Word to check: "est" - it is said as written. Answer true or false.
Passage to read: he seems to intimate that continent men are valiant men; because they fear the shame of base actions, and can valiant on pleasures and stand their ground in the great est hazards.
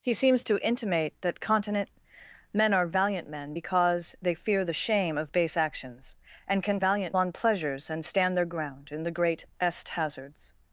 true